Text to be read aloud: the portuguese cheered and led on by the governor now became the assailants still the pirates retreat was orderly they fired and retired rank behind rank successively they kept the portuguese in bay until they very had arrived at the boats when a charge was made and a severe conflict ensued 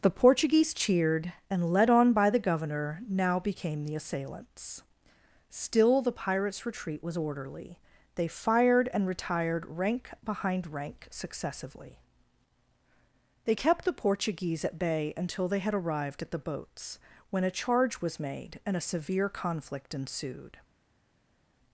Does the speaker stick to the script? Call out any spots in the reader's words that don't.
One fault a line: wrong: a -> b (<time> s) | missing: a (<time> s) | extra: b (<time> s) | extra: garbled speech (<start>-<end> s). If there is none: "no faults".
wrong: in -> at (14.6 s)
missing: very (15.6 s)